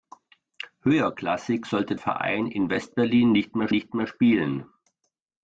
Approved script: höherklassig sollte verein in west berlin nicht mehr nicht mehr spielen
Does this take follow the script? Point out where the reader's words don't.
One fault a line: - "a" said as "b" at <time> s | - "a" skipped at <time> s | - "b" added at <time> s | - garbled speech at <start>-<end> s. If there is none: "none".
none